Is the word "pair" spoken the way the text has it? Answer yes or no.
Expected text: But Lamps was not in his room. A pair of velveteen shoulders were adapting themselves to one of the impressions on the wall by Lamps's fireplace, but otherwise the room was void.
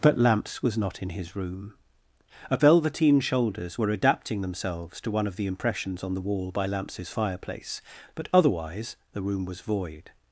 no